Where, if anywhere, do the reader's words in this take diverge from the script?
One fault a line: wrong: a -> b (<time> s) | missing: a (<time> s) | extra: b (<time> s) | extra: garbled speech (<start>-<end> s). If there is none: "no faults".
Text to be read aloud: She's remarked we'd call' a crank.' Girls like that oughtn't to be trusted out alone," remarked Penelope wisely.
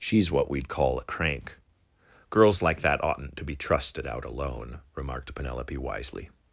wrong: remarked -> what (0.3 s)